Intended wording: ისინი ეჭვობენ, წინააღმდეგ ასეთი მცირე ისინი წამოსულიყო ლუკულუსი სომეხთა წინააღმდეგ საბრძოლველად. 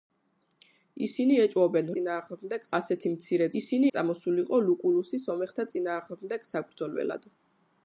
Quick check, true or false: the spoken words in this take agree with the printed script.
true